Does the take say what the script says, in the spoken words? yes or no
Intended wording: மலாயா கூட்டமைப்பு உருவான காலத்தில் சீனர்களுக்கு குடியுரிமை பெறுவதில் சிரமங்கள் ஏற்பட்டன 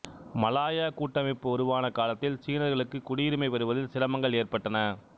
yes